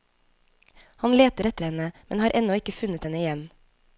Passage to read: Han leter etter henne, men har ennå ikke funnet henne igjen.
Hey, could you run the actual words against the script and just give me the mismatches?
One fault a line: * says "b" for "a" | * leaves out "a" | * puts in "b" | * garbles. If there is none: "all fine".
all fine